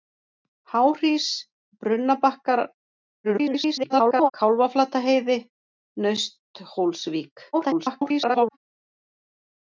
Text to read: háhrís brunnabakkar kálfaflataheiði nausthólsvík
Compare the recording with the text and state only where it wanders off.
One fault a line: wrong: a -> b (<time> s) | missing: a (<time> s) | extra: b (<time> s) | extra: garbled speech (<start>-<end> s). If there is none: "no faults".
extra: garbled speech (3.2-4.3 s)
extra: garbled speech (7.5-8.6 s)